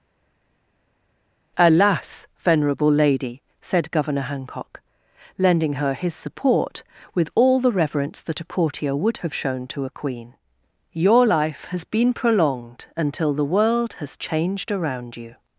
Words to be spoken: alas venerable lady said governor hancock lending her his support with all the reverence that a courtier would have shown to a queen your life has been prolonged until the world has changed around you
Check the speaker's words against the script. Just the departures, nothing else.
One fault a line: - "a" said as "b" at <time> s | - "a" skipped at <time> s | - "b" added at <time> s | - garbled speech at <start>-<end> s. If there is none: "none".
none